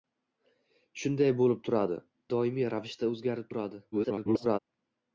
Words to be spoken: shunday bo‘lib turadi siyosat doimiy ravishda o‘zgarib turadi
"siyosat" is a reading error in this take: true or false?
true